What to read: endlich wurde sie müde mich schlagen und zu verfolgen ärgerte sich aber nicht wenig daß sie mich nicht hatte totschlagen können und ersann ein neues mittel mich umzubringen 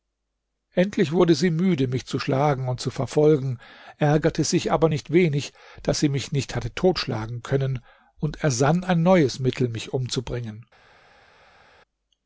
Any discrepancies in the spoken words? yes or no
yes